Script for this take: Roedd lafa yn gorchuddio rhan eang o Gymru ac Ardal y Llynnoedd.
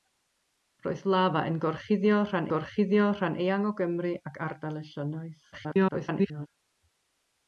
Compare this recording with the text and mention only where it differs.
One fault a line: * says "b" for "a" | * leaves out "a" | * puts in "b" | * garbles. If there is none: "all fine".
* puts in "gorchuddio rhan"
* garbles